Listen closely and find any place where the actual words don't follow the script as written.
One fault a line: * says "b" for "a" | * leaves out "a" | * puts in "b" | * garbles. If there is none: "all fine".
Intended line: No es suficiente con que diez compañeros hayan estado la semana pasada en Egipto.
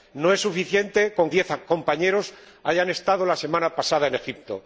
* leaves out "que"